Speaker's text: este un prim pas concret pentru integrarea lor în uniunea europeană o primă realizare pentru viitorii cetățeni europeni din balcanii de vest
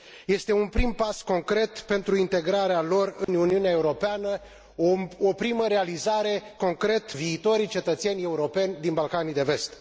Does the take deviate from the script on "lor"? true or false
false